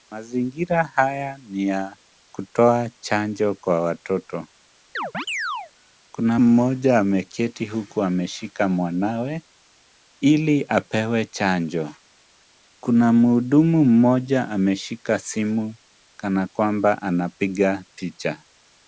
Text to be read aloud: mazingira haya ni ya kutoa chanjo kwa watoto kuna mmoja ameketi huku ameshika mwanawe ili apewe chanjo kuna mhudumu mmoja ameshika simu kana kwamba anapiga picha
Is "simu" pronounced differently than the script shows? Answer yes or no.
no